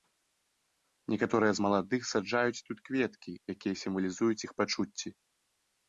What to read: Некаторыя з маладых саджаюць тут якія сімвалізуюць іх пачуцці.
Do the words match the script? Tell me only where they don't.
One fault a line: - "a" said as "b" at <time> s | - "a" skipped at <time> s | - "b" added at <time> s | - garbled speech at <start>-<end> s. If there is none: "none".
- "кветкі" added at 2.9 s